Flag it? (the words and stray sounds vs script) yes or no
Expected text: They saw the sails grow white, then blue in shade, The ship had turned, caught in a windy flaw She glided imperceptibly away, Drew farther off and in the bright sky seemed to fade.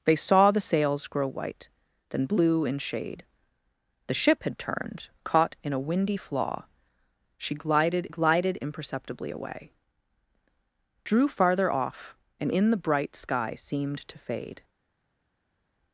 yes